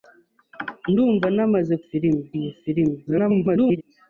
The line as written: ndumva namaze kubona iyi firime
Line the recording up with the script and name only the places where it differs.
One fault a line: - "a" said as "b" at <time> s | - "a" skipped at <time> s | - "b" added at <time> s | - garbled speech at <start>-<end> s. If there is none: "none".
- "kubona" said as "firime" at 1.9 s
- garbled speech at 3.1-3.8 s